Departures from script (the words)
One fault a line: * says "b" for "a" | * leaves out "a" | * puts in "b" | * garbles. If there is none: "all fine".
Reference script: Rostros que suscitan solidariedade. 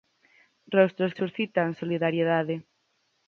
* leaves out "que"